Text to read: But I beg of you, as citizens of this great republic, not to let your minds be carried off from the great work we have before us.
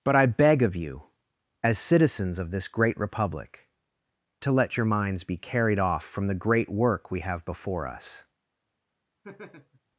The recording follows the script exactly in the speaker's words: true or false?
false